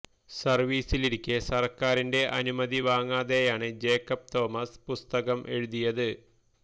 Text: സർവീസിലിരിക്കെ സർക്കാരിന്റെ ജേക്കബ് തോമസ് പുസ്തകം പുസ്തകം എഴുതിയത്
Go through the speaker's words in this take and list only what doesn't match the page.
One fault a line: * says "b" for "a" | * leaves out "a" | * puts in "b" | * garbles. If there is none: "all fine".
* puts in "അനുമതി വാങ്ങാതെയാണ്"
* leaves out "പുസ്തകം"